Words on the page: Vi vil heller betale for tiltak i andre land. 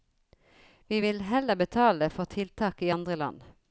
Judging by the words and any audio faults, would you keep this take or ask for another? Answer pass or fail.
pass